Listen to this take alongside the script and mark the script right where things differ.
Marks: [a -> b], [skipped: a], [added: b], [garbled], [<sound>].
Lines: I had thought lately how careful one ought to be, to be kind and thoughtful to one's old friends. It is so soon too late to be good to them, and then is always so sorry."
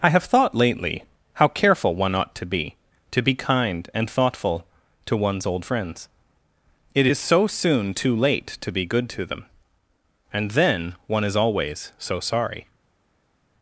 I [had -> have] thought lately how careful one ought to be, to be kind and thoughtful to one's old friends. It is so soon too late to be good to them, and then [added: one] is always so sorry."